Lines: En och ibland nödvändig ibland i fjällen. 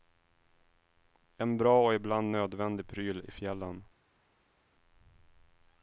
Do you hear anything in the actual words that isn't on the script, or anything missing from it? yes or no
yes